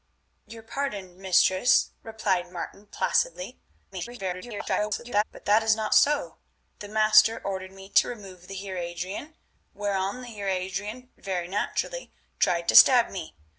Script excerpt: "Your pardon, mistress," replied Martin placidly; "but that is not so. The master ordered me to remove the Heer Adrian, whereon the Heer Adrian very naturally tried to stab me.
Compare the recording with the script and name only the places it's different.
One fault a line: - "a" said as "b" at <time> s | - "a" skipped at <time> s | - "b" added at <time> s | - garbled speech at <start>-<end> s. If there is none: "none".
- garbled speech at 3.9-5.2 s